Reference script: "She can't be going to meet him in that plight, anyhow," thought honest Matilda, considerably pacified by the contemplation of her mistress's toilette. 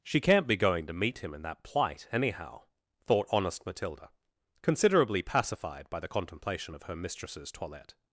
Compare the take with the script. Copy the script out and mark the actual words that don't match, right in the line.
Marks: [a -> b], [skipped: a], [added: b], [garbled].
"She can't be going to meet him in that plight, anyhow," thought honest Matilda, considerably pacified by the contemplation of her mistress's toilette.